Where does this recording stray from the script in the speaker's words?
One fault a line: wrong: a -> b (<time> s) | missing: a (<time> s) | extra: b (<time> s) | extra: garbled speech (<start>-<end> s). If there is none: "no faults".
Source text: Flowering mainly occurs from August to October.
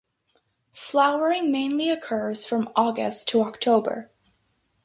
no faults